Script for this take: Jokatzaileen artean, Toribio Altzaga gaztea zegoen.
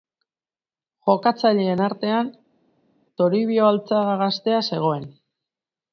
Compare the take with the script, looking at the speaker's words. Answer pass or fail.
pass